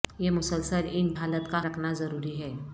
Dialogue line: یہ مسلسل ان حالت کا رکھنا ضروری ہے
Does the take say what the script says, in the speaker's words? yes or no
yes